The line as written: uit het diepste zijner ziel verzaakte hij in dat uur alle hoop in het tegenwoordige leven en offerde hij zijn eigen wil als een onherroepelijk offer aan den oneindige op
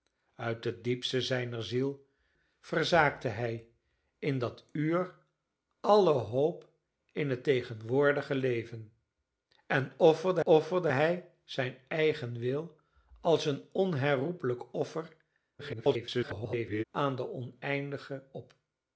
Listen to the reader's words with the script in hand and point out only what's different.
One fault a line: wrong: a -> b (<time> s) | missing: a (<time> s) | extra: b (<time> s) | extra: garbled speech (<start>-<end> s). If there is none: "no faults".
extra: offerde (10.4 s)
extra: garbled speech (15.6-16.8 s)